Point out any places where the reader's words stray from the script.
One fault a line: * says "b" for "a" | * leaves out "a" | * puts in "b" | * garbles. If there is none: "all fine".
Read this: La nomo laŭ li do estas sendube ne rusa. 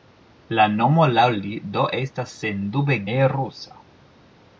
all fine